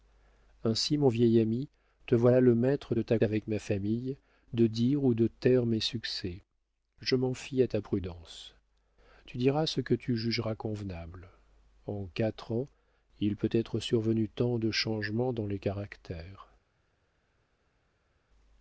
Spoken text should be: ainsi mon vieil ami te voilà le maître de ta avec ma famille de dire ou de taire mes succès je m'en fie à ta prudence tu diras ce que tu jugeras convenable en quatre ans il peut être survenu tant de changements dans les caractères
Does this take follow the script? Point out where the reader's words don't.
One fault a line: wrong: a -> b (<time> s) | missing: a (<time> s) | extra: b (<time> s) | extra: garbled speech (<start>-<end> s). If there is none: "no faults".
no faults